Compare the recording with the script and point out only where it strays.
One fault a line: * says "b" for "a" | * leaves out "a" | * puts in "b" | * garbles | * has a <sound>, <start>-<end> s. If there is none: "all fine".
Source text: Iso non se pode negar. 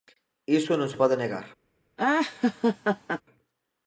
* has a laugh, 2.0-3.2 s